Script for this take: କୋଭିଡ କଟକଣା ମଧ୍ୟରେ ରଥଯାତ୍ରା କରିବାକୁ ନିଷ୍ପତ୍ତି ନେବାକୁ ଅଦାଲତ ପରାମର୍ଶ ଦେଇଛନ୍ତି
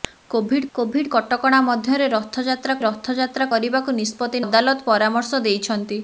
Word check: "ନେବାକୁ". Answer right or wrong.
wrong